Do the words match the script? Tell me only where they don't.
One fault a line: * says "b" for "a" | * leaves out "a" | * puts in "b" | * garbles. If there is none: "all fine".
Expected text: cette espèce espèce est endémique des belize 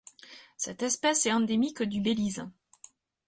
* leaves out "espèce"
* says "du" for "des"